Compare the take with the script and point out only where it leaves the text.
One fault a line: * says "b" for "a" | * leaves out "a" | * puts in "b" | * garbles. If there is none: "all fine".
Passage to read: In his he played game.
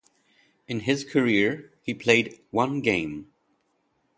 * puts in "career"
* puts in "one"